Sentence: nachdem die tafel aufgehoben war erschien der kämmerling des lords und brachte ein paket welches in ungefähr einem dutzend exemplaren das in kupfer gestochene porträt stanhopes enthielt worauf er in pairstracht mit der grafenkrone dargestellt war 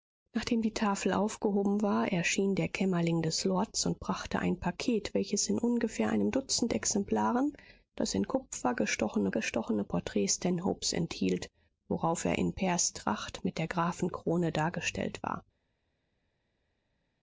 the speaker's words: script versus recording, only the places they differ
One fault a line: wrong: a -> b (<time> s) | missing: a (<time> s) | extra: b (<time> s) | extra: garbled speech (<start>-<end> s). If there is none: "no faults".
extra: gestochene (9.3 s)